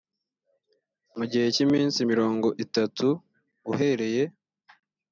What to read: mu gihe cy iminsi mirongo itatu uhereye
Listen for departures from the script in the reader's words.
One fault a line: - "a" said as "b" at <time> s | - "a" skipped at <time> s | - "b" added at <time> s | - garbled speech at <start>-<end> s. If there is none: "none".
none